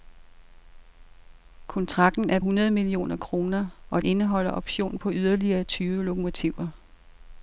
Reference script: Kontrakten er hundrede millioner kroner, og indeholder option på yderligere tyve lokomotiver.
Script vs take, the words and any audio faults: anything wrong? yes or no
no